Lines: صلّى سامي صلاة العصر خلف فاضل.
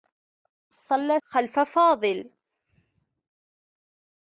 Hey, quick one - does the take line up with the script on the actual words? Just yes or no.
no